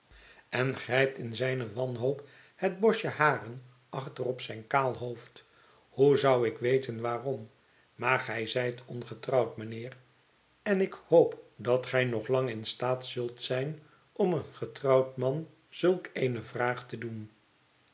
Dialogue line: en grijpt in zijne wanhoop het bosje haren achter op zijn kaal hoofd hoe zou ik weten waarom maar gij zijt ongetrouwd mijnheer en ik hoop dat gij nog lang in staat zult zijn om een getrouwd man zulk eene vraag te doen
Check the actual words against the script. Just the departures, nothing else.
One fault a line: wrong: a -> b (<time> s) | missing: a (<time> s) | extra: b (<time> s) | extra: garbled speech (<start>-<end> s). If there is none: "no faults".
no faults